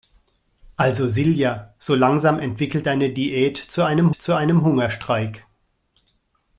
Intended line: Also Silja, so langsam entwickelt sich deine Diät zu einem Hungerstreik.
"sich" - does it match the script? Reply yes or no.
no